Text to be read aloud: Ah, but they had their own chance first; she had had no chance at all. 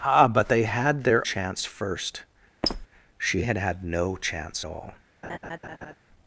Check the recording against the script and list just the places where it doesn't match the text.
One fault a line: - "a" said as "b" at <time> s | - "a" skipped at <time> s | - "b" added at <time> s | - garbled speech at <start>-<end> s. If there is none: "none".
- "own" skipped at 1.3 s
- "at" skipped at 4.6 s